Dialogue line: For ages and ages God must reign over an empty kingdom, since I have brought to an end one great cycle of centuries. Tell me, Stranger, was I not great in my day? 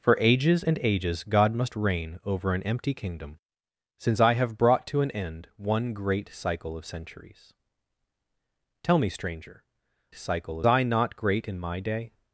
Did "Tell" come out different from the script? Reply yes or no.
no